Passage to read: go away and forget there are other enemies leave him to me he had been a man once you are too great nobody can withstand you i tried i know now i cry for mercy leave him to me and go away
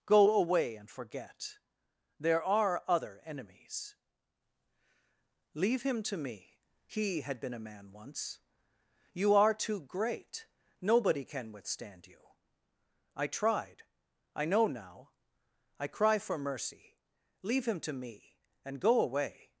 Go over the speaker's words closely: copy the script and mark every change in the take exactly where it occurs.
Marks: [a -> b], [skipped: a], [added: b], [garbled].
go away and forget there are other enemies leave him to me he had been a man once you are too great nobody can withstand you i tried i know now i cry for mercy leave him to me and go away